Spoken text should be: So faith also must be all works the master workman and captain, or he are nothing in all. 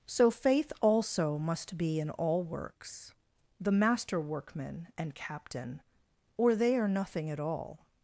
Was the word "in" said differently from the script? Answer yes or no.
yes